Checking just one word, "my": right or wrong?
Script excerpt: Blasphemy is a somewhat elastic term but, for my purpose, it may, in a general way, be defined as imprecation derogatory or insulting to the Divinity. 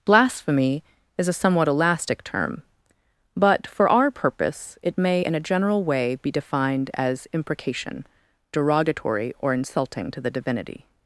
wrong